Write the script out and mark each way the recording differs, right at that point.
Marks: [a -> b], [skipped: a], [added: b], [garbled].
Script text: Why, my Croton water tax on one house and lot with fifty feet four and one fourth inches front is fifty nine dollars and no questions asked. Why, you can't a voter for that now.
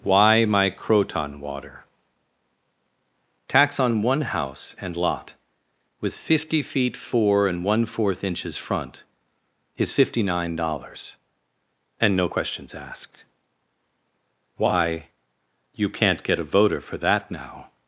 Why, my Croton water tax on one house and lot with fifty feet four and one fourth inches front is fifty nine dollars and no questions asked. Why, you can't [added: get] a voter for that now.